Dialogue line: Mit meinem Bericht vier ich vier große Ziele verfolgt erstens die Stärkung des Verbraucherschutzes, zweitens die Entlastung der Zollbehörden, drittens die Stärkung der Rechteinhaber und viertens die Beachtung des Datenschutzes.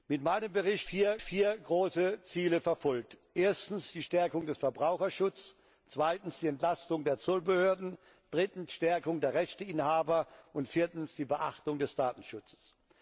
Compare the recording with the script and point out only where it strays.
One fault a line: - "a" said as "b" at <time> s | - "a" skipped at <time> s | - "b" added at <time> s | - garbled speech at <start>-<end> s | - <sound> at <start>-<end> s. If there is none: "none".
none